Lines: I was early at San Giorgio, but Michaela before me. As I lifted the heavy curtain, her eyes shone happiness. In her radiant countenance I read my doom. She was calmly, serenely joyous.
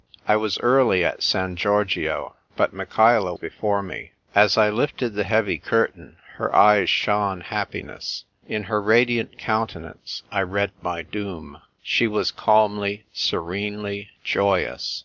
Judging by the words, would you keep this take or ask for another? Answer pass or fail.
pass